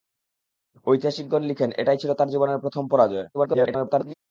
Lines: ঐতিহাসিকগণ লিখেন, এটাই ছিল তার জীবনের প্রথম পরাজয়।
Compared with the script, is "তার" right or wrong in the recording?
right